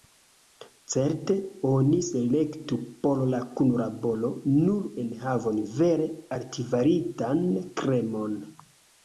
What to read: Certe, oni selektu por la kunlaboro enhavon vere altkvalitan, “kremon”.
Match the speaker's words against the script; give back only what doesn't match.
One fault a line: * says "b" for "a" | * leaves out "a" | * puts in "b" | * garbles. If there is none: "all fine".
* puts in "nur"